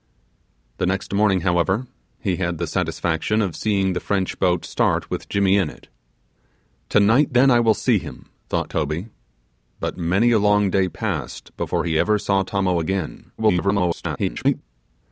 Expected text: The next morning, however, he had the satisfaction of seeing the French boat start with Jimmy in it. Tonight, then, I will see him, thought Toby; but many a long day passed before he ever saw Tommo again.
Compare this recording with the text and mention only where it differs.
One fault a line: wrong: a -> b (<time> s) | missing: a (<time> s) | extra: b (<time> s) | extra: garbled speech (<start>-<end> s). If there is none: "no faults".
extra: garbled speech (13.4-14.6 s)